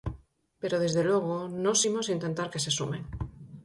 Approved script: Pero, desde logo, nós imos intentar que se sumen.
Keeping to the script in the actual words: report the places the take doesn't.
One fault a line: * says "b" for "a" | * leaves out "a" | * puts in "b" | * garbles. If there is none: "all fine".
all fine